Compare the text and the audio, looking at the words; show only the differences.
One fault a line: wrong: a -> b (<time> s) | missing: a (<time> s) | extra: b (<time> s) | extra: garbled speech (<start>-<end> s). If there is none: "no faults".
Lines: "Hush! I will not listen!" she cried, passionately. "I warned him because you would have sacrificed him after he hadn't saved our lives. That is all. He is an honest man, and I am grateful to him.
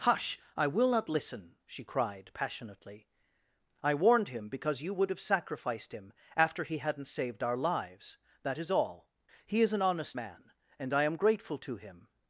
no faults